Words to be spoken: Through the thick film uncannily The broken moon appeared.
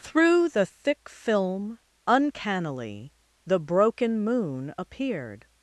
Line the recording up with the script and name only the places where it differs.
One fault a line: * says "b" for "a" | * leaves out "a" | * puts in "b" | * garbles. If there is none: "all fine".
all fine